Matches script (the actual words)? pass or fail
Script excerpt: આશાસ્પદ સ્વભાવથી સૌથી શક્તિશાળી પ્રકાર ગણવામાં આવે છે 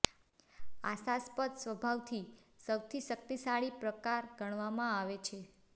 pass